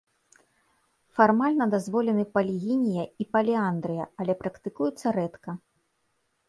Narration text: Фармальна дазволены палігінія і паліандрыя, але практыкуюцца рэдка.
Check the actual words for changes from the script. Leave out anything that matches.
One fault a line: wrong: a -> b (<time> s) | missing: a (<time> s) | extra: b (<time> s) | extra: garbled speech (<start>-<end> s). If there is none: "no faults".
no faults